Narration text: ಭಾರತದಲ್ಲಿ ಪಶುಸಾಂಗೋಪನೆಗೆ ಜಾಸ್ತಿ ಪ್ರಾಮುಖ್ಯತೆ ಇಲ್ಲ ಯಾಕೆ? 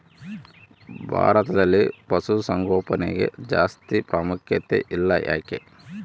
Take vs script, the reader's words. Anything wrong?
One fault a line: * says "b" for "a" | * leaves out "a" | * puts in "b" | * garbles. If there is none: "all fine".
all fine